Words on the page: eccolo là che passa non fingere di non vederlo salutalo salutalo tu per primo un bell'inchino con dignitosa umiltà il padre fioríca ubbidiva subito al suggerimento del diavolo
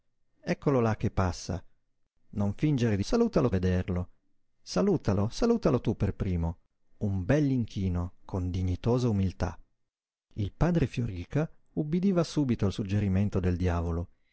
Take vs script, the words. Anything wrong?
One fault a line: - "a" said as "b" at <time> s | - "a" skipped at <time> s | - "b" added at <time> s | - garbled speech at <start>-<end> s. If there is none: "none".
- "non" said as "salutalo" at 3.0 s